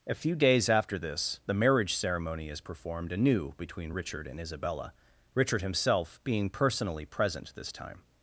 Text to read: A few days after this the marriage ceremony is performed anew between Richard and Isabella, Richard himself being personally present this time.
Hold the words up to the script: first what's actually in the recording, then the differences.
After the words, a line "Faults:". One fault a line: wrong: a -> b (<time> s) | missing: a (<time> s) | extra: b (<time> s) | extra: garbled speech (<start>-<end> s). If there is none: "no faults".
A few days after this the marriage ceremony is performed anew between Richard and Isabella, Richard himself being personally present this time.
Faults:
no faults